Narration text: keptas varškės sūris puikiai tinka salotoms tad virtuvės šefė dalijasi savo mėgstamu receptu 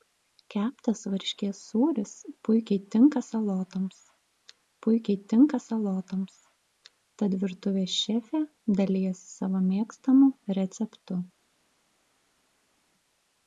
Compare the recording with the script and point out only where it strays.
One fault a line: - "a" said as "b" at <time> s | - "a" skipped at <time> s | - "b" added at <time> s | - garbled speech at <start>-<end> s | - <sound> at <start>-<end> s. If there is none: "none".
- "puikiai tinka salotoms" added at 4.9 s